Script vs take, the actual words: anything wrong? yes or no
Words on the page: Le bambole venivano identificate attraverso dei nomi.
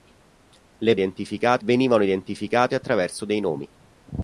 yes